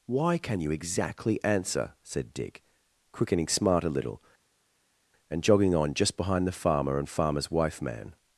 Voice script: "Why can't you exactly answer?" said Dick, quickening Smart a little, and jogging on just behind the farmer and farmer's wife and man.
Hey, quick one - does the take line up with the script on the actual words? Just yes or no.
no